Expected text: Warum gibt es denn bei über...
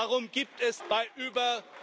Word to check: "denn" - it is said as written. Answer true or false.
false